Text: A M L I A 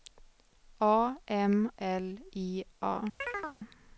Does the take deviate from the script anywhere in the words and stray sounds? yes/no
yes